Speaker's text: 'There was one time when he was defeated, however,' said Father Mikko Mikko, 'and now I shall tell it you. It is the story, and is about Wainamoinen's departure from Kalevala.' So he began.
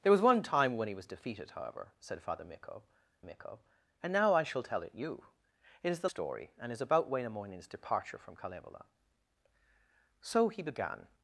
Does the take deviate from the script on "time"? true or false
false